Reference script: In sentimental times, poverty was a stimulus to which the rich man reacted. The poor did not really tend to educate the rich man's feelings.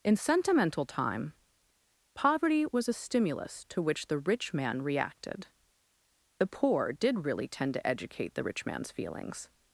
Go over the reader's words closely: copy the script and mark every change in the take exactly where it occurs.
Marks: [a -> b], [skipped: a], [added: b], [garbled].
In sentimental [times, -> time] poverty was a stimulus to which the rich man reacted. The poor did [skipped: not] really tend to educate the rich man's feelings.